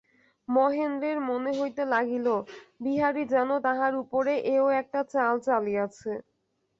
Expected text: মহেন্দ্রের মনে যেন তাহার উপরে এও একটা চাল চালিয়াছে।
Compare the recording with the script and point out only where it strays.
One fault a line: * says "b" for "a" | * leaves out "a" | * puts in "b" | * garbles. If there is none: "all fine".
* puts in "হইতে লাগিল বিহারী"